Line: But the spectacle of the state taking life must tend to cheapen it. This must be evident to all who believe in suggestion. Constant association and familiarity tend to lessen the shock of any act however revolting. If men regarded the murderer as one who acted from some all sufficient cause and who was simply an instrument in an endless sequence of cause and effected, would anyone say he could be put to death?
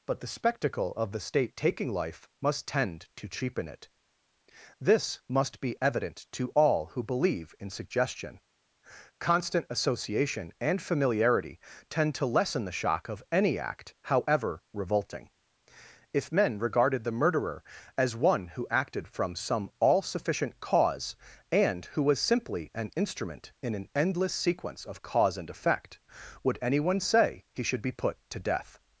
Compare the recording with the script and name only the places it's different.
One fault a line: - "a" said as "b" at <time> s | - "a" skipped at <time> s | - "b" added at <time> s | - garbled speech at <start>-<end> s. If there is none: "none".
- "effected" said as "effect" at 25.5 s
- "could" said as "should" at 27.6 s